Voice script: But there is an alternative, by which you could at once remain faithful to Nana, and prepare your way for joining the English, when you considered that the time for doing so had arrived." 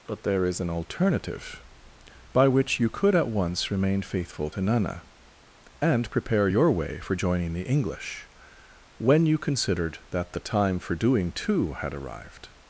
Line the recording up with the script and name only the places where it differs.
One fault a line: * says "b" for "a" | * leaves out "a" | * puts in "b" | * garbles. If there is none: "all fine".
* says "too" for "so"